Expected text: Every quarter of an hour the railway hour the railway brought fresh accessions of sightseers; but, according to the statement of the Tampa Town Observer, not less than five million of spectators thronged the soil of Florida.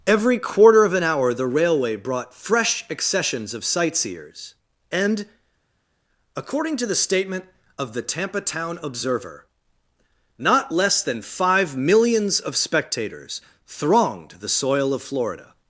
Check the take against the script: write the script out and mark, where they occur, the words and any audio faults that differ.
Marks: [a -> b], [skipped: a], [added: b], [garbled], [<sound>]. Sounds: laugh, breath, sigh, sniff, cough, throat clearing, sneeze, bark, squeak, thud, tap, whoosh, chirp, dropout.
Every quarter of an hour the railway [skipped: hour the railway] brought fresh accessions of sightseers; [but, -> and] according to the statement of the Tampa Town Observer, not less than five [million -> millions] of spectators thronged the soil of Florida.